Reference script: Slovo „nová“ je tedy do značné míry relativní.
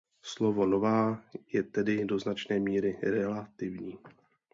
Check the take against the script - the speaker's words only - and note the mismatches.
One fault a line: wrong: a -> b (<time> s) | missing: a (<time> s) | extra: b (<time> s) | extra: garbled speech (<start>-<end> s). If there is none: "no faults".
no faults